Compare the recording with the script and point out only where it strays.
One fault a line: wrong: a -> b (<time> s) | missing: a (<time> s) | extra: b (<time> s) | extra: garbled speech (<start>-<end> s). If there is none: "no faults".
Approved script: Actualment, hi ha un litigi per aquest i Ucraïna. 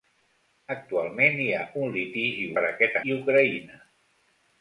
no faults